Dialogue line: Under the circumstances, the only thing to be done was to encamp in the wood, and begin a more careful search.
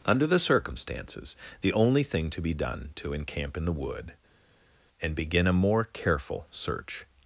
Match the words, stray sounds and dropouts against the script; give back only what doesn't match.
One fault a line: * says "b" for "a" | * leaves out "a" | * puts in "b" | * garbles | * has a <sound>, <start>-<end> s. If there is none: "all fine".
* leaves out "was"